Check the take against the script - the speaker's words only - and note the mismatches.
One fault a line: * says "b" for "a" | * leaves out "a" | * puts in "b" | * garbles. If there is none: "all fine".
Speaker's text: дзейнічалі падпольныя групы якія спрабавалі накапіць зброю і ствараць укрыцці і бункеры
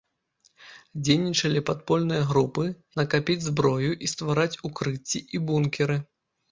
* leaves out "якія спрабавалі"